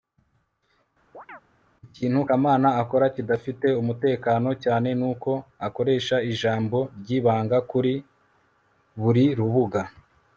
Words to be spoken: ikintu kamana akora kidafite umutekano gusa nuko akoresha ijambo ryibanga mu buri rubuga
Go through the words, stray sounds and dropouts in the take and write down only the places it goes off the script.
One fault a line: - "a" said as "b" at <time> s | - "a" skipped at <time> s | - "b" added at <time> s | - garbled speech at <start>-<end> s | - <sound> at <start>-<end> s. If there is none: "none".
- chirp at 1.1-1.4 s
- "gusa" said as "cyane" at 4.6 s
- "mu" said as "kuri" at 7.7 s